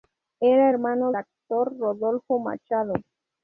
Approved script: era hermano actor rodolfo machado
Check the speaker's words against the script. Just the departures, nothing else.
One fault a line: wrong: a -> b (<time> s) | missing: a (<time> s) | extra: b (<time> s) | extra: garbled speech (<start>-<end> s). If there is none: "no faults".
no faults